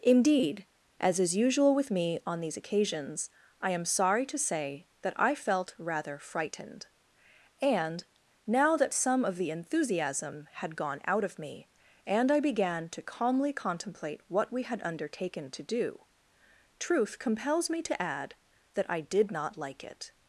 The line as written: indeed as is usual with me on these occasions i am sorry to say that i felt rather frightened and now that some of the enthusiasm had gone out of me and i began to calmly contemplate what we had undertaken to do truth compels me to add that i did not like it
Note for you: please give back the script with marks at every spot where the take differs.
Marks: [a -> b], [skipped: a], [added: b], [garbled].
indeed as is usual with me on these occasions i am sorry to say that i felt rather frightened and now that some of the enthusiasm had gone out of me and i began to calmly contemplate what we had undertaken to do truth compels me to add that i did not like it